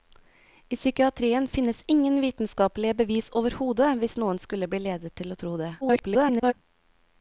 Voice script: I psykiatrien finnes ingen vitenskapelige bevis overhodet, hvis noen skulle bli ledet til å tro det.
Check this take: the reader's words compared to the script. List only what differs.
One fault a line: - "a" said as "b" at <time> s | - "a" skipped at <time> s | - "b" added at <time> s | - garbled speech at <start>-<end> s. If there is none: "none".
- garbled speech at 5.8-6.5 s